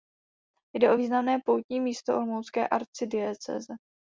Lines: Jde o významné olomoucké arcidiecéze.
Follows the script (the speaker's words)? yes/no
no